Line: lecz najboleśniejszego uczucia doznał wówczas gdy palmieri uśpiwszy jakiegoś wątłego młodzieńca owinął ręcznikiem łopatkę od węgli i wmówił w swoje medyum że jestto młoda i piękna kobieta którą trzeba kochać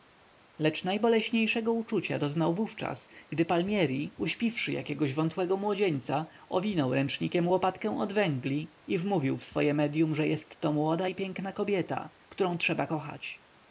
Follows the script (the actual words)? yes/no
yes